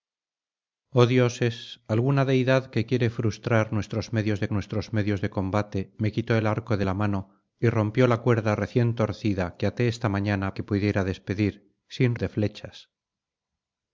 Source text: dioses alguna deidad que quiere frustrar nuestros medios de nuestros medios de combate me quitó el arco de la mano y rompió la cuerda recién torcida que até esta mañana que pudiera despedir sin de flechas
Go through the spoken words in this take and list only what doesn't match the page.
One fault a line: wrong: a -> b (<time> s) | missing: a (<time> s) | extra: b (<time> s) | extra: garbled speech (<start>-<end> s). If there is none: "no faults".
no faults